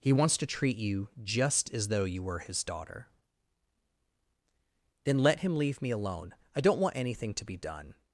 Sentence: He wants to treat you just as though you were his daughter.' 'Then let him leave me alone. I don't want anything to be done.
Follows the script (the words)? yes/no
yes